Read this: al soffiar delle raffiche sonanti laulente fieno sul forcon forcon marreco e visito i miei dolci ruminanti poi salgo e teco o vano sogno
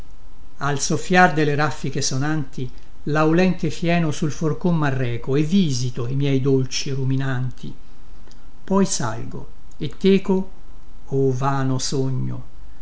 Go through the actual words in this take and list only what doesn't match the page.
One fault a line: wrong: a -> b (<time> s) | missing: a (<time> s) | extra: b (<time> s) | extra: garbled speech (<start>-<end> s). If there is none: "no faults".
missing: forcon (4.8 s)